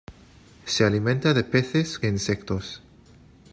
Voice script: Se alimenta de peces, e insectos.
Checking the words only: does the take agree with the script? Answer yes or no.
yes